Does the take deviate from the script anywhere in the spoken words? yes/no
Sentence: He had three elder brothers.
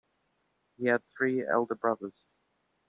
no